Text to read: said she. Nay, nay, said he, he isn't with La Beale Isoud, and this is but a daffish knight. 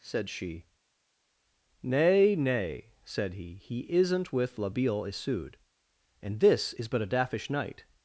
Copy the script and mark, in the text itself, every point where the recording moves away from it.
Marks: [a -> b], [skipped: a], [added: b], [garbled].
said she. Nay, nay, said he, he isn't with La Beale Isoud, and this is but a daffish knight.